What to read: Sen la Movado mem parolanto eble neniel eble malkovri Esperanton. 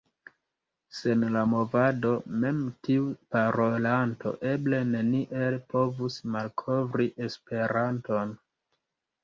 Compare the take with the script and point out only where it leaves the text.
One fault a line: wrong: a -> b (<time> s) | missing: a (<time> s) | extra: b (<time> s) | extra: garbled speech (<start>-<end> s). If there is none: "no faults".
extra: tiu (2.9 s)
wrong: eble -> povus (5.8 s)